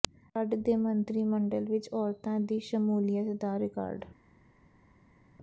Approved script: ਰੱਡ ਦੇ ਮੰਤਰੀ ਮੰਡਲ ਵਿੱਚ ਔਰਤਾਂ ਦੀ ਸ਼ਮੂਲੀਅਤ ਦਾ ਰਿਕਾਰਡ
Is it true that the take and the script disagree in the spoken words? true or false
false